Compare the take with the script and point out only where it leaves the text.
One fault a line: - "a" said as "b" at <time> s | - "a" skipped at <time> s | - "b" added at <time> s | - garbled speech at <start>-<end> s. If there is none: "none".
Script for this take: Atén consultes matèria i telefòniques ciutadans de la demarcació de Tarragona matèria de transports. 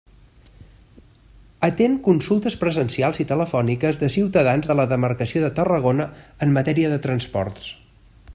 - "matèria" said as "presencials" at 2.6 s
- "de" added at 4.0 s
- "en" added at 6.5 s